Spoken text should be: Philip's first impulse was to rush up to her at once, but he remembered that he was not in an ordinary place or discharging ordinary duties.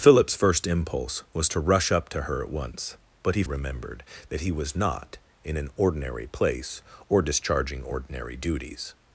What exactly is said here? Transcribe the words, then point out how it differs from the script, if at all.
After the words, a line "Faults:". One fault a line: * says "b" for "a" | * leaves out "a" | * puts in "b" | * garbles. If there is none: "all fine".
Philip's first impulse was to rush up to her at once, but he remembered that he was not in an ordinary place or discharging ordinary duties.
Faults:
all fine